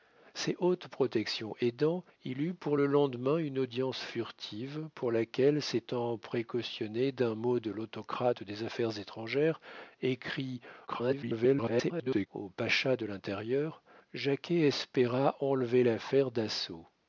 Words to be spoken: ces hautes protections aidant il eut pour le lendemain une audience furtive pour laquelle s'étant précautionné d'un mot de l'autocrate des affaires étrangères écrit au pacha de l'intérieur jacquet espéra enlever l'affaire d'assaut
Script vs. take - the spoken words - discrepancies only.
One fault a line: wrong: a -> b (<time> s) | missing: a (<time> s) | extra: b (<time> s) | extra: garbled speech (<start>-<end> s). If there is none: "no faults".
extra: garbled speech (10.9-12.3 s)